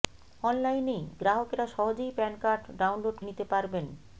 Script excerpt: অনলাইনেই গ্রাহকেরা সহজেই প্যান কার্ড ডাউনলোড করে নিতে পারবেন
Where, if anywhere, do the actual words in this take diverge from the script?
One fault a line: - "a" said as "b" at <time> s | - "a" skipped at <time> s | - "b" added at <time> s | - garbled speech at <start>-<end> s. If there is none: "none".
- "করে" skipped at 3.2 s